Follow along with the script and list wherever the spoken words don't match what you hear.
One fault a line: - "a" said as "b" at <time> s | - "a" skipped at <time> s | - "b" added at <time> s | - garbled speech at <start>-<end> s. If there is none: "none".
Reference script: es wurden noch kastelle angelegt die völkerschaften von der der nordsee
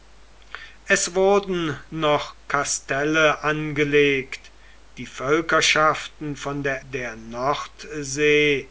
none